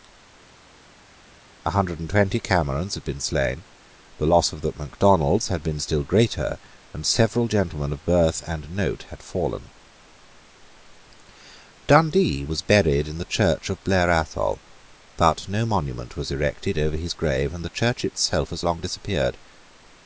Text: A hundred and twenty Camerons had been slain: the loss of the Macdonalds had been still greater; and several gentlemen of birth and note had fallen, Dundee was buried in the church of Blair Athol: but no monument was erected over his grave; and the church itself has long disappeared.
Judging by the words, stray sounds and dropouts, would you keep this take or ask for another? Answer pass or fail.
pass